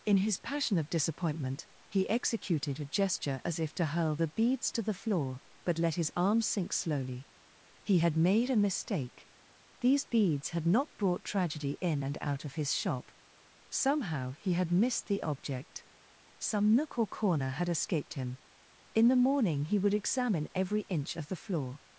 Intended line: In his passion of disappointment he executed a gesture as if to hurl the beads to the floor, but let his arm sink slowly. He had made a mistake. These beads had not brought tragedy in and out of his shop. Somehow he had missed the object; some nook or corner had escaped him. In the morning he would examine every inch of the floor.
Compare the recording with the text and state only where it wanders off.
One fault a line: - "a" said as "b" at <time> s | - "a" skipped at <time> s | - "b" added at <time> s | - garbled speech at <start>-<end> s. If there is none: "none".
none